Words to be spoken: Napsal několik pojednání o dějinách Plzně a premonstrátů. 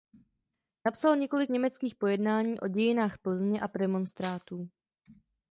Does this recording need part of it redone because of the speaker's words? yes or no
yes